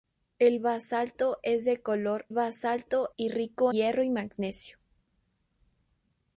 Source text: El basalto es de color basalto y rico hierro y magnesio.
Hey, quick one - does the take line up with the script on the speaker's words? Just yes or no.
yes